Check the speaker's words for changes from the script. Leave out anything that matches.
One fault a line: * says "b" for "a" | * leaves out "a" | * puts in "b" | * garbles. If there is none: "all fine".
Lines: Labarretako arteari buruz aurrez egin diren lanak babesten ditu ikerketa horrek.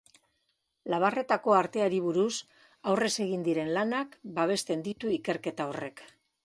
all fine